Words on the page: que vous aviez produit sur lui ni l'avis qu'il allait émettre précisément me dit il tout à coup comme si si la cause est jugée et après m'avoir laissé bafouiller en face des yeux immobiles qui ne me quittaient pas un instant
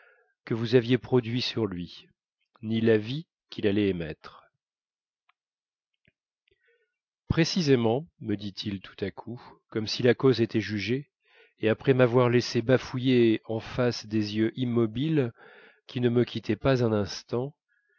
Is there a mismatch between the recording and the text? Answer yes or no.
yes